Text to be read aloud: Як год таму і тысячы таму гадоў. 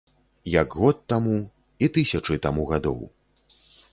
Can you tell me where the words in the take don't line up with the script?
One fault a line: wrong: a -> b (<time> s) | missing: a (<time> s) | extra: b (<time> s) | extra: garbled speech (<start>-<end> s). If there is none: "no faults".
no faults